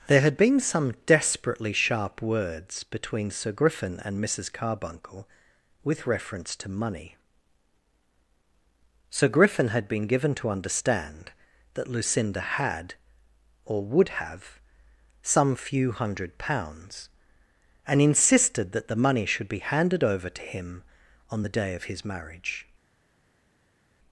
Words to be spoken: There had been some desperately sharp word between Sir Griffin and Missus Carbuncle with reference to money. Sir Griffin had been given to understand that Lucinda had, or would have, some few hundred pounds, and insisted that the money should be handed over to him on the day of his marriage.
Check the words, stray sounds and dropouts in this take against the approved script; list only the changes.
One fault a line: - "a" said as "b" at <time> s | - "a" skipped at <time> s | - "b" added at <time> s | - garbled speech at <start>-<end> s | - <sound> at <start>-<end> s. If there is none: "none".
- "word" said as "words" at 2.2 s